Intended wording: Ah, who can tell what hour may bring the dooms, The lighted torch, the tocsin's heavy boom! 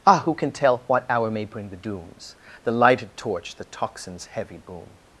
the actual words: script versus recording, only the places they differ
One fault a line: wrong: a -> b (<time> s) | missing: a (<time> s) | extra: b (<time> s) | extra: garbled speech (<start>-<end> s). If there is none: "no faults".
no faults